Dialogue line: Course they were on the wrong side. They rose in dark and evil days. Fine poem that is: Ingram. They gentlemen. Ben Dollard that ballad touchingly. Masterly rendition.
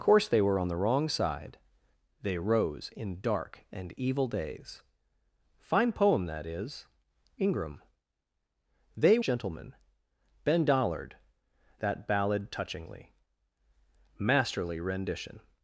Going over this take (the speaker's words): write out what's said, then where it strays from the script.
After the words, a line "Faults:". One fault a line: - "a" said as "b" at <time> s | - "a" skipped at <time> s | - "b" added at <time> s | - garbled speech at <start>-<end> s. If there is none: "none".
Course they were on the wrong side. They rose in dark and evil days. Fine poem that is: Ingram. They gentlemen. Ben Dollard that ballad touchingly. Masterly rendition.
Faults:
none